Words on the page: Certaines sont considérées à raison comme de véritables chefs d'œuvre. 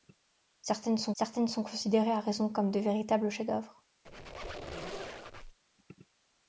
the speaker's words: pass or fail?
fail